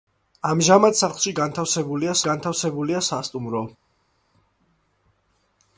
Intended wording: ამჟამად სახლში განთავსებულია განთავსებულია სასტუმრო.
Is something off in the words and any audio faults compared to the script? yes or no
no